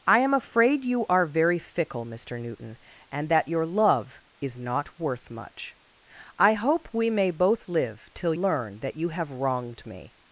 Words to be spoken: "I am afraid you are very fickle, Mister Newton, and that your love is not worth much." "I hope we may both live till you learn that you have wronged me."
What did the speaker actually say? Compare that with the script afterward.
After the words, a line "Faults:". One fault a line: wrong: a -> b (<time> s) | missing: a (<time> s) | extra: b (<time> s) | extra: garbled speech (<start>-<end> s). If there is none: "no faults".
"I am afraid you are very fickle, Mister Newton, and that your love is not worth much." "I hope we may both live till learn that you have wronged me."
Faults:
missing: you (8.3 s)